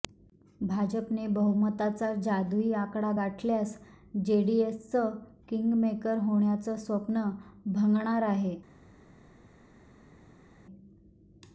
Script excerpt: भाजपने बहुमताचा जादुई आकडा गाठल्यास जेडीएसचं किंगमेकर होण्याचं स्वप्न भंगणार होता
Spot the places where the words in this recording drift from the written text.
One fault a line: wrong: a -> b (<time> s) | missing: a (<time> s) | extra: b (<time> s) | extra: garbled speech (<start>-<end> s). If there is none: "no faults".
wrong: होता -> आहे (8.2 s)